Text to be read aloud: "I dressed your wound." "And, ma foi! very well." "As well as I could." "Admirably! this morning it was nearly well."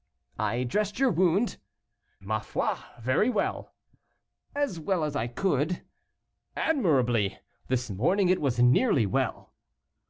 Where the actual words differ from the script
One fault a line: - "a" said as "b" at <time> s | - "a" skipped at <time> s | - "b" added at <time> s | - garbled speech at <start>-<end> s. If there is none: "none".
- "And" skipped at 1.6 s